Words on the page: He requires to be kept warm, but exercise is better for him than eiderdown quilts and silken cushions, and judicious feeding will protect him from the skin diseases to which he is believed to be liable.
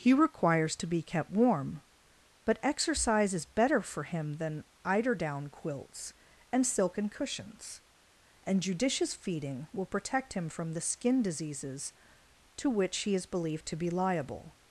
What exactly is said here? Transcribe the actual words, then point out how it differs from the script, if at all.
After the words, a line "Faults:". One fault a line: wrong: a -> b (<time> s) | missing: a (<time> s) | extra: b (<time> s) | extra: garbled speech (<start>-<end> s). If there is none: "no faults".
He requires to be kept warm, but exercise is better for him than eiderdown quilts and silken cushions, and judicious feeding will protect him from the skin diseases to which he is believed to be liable.
Faults:
no faults